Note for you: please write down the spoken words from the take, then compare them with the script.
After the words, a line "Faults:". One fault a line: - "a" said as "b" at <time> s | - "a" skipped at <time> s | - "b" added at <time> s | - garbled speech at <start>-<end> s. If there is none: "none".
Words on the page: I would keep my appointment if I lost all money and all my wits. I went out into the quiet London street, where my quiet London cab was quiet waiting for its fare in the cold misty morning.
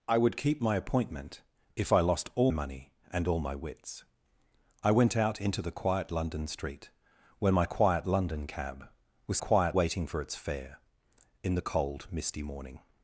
I would keep my appointment if I lost all money and all my wits. I went out into the quiet London street, where my quiet London cab was quiet waiting for its fare in the cold misty morning.
Faults:
none